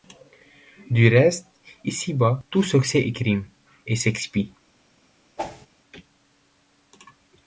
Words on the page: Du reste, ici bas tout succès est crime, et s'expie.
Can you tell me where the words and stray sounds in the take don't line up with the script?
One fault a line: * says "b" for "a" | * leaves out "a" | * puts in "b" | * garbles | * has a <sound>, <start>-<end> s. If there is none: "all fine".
* has a whoosh, 5.4-5.7 s